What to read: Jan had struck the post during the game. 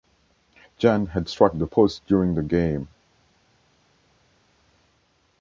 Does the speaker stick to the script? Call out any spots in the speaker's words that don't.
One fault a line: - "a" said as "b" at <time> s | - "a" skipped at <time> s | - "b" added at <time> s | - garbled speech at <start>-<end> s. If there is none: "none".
none